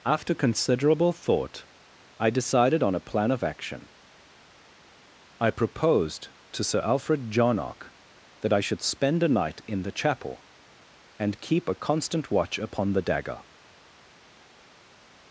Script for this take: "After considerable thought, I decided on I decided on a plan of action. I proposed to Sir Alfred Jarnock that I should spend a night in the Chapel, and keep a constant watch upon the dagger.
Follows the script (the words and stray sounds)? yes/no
no